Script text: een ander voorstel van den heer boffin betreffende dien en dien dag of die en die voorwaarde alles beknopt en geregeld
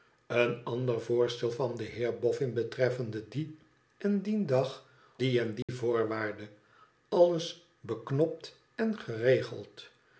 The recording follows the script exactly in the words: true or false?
false